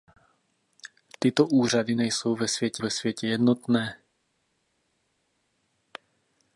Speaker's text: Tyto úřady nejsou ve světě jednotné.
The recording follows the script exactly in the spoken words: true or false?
false